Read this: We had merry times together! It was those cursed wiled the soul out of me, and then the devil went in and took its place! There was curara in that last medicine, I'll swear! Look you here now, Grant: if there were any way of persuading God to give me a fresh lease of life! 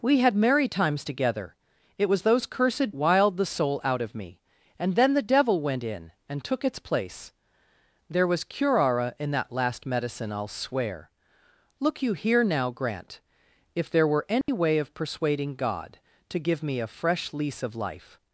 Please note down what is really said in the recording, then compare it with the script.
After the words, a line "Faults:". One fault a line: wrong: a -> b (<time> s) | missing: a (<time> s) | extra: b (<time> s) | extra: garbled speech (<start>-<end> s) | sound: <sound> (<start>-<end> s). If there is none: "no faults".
We had merry times together! It was those cursed wiled the soul out of me, and then the devil went in and took its place! There was curara in that last medicine, I'll swear! Look you here now, Grant: if there were any way of persuading God to give me a fresh lease of life!
Faults:
sound: dropout (14.4-14.5 s)